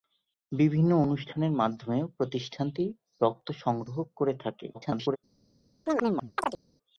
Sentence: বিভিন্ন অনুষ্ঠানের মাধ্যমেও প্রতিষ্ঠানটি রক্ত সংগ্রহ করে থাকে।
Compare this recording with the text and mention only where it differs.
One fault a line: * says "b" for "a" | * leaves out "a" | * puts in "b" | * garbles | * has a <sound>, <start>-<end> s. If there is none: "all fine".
* garbles
* has a chirp, 5.9-6.6 s